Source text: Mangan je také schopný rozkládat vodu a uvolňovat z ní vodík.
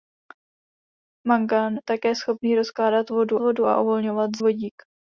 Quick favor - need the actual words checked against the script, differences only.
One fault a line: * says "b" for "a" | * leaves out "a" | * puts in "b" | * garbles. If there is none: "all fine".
* leaves out "je"
* puts in "vodu"
* leaves out "ní"